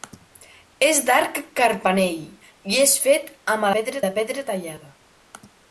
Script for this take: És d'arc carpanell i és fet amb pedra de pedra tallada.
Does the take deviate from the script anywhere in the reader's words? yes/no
no